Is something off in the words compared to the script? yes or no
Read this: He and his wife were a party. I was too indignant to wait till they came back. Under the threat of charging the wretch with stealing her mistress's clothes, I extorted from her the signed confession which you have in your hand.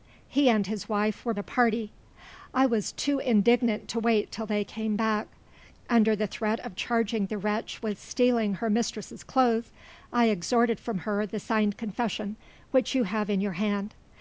no